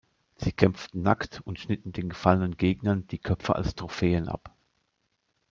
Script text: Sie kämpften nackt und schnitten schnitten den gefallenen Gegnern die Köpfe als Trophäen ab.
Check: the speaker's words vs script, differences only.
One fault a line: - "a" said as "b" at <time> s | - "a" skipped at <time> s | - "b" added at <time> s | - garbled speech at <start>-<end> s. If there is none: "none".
- "schnitten" skipped at 1.9 s